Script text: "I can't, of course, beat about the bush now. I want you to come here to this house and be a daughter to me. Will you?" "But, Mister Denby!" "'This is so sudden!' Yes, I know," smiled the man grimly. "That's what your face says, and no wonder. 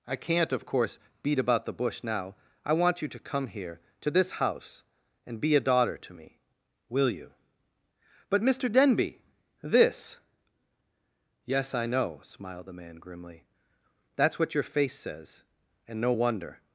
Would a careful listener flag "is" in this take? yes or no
yes